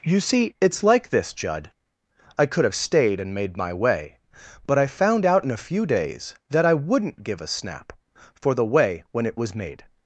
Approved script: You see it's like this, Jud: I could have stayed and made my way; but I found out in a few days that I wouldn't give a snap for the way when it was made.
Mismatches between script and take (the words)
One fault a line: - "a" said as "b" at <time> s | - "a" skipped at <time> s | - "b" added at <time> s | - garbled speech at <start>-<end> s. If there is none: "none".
none